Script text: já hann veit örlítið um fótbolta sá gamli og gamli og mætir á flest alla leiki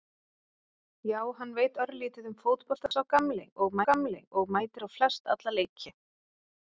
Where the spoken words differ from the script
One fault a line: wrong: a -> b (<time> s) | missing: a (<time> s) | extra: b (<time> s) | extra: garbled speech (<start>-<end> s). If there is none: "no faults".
no faults